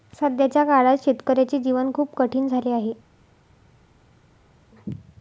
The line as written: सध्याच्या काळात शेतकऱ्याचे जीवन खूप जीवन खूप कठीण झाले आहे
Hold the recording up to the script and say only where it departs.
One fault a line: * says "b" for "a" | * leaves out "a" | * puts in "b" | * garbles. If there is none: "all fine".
* leaves out "जीवन खूप"